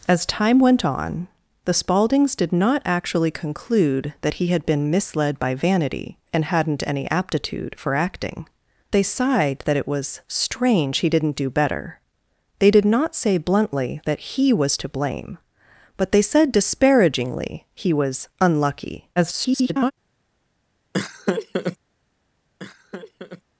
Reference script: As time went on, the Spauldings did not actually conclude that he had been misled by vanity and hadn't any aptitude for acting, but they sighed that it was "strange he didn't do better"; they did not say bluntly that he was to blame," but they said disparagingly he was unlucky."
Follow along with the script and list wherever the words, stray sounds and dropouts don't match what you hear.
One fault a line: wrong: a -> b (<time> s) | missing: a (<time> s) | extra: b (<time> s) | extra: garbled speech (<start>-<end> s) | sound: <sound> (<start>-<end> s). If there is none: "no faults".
missing: but (8.5 s)
extra: garbled speech (19.2-19.9 s)
sound: laugh (20.9-21.8 s)
sound: laugh (22.6-23.4 s)